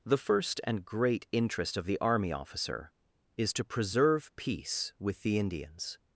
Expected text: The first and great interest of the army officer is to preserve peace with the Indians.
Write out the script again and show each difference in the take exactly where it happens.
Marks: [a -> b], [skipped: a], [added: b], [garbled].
The first and great interest of the army officer is to preserve peace with the Indians.